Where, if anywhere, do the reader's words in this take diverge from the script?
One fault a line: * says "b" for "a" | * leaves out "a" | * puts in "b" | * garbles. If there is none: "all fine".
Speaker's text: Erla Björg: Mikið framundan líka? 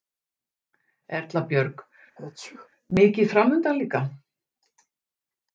all fine